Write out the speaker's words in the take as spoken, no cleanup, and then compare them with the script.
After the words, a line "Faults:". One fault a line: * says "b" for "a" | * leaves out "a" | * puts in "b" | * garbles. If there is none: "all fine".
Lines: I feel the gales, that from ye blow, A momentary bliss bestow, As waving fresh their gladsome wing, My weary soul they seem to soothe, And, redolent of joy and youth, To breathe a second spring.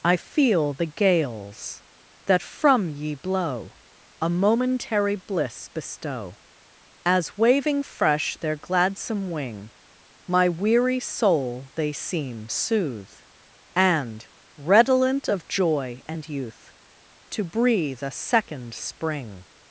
I feel the gales, that from ye blow, A momentary bliss bestow, As waving fresh their gladsome wing, My weary soul they seem soothe, And, redolent of joy and youth, To breathe a second spring.
Faults:
* leaves out "to"